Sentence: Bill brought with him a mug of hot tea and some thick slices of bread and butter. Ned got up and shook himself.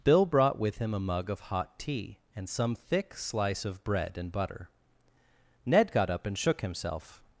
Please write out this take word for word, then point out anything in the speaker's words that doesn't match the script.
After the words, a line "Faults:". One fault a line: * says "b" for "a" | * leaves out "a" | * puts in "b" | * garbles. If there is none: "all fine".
Bill brought with him a mug of hot tea and some thick slice of bread and butter. Ned got up and shook himself.
Faults:
* says "slice" for "slices"